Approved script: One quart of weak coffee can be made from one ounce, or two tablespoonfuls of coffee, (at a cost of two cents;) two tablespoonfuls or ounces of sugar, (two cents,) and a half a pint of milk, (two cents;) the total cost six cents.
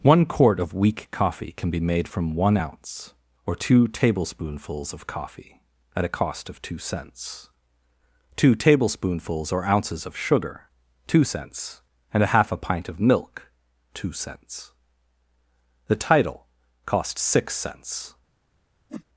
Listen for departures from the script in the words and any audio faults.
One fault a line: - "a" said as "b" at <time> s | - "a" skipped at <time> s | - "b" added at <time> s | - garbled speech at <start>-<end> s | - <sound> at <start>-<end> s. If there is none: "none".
- "total" said as "title" at 16.0 s
- whoosh at 18.9-19.0 s